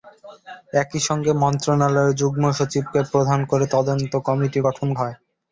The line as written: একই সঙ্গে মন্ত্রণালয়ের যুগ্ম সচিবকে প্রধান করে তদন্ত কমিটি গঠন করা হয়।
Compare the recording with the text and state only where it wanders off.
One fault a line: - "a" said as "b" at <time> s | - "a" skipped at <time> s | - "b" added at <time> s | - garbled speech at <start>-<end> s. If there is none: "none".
- "করা" skipped at 4.9 s